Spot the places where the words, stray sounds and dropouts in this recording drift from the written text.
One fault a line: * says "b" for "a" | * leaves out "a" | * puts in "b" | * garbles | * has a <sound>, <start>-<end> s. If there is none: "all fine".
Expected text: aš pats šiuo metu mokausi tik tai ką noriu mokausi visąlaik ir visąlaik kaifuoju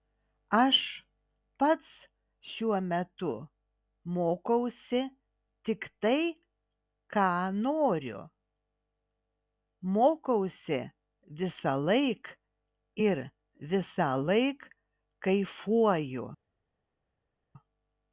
all fine